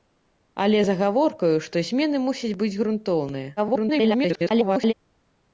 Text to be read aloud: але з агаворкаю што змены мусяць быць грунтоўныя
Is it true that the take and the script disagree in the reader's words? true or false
true